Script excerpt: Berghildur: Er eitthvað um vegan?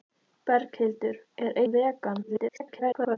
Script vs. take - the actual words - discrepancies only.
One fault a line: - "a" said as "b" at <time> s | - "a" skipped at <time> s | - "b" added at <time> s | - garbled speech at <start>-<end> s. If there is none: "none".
- "eitthvað" skipped at 1.6 s
- garbled speech at 2.2-3.2 s